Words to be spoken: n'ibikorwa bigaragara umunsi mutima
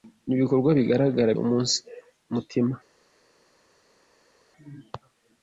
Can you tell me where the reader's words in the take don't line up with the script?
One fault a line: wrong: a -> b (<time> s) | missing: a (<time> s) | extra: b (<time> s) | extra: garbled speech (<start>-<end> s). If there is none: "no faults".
no faults